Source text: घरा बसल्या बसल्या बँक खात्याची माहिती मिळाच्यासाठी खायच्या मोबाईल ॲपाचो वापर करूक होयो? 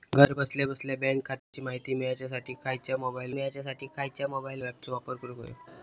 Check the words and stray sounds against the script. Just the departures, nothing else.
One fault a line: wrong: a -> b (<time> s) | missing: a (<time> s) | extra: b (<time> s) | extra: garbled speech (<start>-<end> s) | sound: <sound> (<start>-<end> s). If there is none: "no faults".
sound: dropout (1.4-1.5 s)
extra: मिळाच्यासाठी खायच्या मोबाईल (3.3 s)